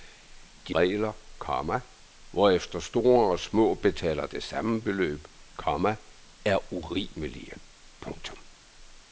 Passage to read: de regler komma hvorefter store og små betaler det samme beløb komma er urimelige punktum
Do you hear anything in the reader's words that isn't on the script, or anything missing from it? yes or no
no